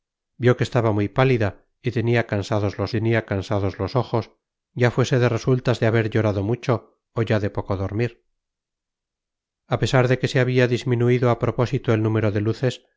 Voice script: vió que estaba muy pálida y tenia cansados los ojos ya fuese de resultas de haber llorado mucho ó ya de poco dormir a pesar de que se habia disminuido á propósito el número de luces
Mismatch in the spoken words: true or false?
true